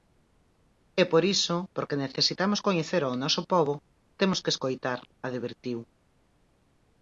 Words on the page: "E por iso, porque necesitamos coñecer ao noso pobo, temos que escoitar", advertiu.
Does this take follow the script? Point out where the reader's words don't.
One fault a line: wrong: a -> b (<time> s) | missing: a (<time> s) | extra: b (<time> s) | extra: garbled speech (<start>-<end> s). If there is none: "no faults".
no faults